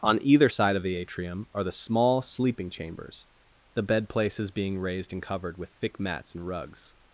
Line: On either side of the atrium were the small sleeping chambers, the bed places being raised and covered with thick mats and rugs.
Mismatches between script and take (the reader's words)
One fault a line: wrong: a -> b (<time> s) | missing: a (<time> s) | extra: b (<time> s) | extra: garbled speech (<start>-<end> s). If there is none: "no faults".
wrong: were -> are (1.5 s)